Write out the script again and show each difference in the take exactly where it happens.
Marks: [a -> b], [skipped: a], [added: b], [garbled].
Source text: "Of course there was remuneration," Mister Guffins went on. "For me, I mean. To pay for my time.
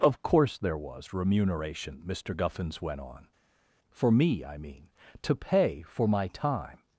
"Of course there was remuneration," Mister Guffins went on. "For me, I mean. To pay for my time.